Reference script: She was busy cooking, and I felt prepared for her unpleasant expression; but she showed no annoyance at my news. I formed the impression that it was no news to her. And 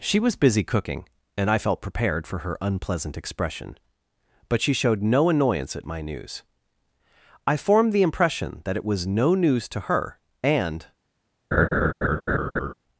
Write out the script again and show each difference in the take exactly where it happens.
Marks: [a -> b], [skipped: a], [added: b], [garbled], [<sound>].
She was busy cooking, and I felt prepared for her unpleasant expression; but she showed no annoyance at my news. I formed the impression that it was no news to her. And [laugh]